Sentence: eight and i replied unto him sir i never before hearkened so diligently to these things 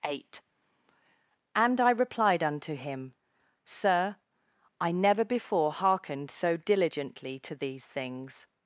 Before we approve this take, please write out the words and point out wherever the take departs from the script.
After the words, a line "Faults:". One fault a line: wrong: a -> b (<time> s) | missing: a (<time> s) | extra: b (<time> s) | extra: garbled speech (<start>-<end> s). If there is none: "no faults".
eight and i replied unto him sir i never before hearkened so diligently to these things
Faults:
no faults